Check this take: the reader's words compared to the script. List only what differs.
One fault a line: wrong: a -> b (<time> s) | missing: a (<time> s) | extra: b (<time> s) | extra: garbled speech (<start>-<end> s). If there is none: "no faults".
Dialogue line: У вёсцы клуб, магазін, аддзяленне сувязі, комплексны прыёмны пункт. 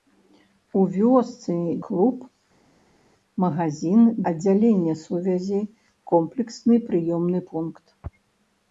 no faults